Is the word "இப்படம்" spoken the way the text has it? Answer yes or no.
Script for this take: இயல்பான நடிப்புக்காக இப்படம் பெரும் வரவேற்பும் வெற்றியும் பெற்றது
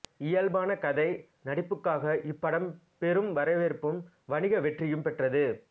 yes